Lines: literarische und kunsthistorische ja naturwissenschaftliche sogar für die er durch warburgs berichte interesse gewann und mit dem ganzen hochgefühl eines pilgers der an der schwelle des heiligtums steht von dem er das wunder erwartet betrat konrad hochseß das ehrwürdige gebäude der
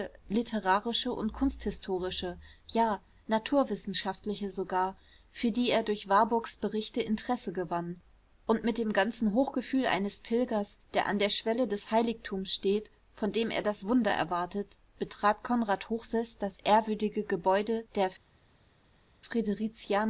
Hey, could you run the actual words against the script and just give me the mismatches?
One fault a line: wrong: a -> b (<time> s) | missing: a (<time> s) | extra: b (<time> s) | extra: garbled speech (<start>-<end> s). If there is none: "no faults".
no faults